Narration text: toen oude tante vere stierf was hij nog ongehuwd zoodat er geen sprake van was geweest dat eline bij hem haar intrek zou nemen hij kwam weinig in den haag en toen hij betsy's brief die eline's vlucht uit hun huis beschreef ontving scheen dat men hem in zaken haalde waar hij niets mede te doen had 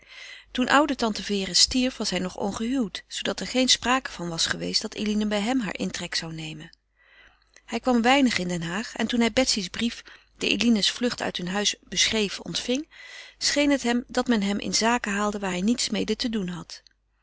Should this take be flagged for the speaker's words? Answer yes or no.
yes